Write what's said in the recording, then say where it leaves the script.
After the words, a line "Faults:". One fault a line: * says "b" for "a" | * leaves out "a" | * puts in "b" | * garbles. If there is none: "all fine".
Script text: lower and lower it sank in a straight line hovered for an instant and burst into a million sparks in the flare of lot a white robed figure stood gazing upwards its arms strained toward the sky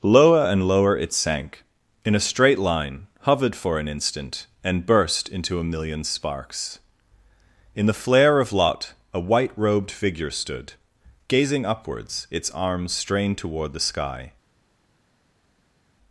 lower and lower it sank in a straight line hovered for an instant and burst into a million sparks in the flare of lot a white robed figure stood gazing upwards its arms strained toward the sky
Faults:
all fine